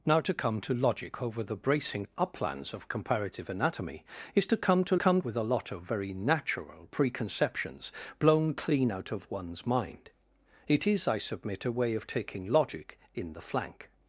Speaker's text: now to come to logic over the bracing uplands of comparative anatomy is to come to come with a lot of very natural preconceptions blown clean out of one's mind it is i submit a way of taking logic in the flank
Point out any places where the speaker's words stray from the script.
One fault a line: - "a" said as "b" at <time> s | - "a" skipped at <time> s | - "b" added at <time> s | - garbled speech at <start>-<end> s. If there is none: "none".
none